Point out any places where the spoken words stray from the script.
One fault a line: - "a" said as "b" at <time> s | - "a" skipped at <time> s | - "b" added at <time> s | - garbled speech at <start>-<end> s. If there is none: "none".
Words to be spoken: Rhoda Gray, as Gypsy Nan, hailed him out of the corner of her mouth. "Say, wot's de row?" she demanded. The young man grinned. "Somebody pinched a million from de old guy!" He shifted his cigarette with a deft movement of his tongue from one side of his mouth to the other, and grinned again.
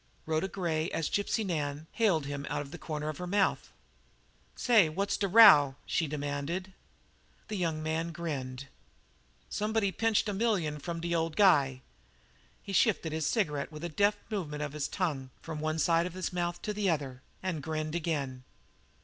none